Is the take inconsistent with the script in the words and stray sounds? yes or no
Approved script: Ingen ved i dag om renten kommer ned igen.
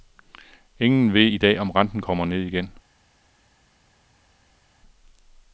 no